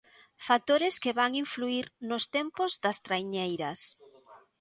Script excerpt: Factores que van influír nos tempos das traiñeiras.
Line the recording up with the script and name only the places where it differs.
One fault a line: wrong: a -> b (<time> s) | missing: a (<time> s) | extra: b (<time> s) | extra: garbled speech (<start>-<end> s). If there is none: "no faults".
no faults